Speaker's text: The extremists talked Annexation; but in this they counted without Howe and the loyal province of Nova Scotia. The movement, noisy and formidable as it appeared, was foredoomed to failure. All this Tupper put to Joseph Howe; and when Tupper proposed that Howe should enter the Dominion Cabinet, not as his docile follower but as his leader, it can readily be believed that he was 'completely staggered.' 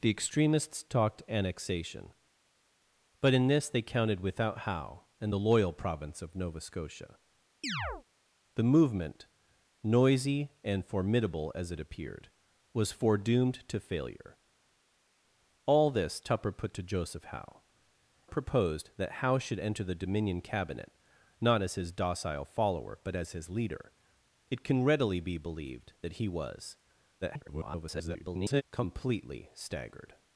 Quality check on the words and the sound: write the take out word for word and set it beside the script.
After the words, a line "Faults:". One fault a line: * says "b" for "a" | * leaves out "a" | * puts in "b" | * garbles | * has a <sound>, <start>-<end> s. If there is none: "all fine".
The extremists talked Annexation; but in this they counted without Howe and the loyal province of Nova Scotia. The movement, noisy and formidable as it appeared, was foredoomed to failure. All this Tupper put to Joseph Howe; proposed that Howe should enter the Dominion Cabinet, not as his docile follower but as his leader, it can readily be believed that he was [garbled] 'completely staggered.'
Faults:
* has a chirp, 7.6-8.0 s
* leaves out "and when Tupper"
* garbles